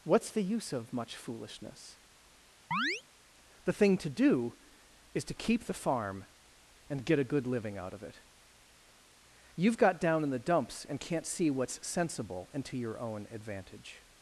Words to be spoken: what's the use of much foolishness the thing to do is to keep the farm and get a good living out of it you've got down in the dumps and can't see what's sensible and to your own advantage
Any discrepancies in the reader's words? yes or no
no